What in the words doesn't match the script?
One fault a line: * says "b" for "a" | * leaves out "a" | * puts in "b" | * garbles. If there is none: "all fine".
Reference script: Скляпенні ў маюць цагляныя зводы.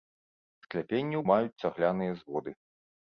all fine